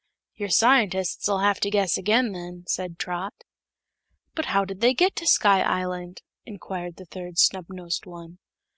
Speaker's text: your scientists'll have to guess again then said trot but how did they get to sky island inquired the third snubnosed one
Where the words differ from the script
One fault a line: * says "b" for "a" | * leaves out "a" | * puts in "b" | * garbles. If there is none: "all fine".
all fine